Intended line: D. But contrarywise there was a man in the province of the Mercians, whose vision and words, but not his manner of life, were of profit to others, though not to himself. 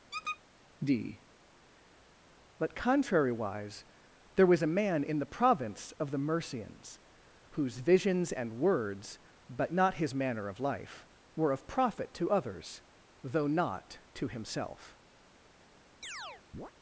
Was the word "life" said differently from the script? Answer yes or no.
no